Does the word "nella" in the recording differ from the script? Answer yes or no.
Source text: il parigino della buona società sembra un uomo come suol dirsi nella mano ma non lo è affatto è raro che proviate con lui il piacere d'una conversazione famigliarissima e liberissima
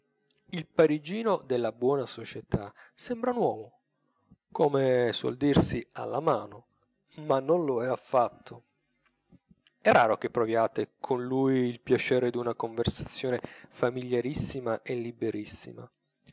yes